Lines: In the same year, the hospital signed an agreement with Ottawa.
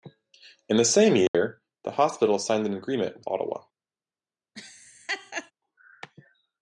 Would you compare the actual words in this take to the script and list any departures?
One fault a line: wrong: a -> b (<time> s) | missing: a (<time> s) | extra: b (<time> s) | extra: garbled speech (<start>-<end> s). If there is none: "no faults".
no faults